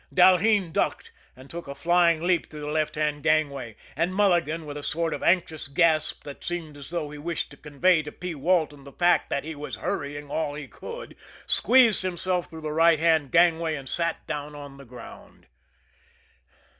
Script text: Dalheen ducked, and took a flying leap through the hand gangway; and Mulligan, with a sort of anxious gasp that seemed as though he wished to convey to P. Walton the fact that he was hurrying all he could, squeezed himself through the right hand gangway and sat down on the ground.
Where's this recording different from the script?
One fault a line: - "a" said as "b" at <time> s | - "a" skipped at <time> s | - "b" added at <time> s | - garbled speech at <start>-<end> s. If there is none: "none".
- "left" added at 2.7 s